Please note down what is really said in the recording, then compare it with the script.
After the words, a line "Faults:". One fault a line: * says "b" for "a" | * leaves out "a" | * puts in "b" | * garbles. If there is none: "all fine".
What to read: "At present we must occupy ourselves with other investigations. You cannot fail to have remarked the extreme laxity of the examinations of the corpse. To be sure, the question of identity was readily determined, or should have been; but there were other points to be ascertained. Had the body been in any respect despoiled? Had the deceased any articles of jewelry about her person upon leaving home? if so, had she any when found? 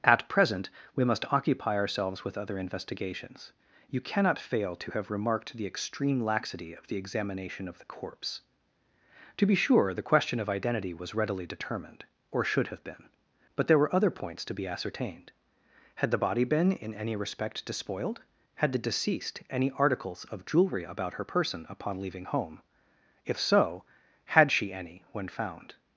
"At present we must occupy ourselves with other investigations. You cannot fail to have remarked the extreme laxity of the examination of the corpse. To be sure, the question of identity was readily determined, or should have been; but there were other points to be ascertained. Had the body been in any respect despoiled? Had the deceased any articles of jewelry about her person upon leaving home? if so, had she any when found?
Faults:
* says "examination" for "examinations"